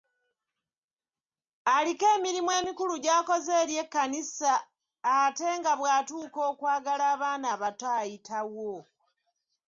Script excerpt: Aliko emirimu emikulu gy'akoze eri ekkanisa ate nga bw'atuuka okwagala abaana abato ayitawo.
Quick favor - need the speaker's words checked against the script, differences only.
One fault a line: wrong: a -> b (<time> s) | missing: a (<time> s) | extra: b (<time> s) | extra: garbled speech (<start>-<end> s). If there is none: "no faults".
no faults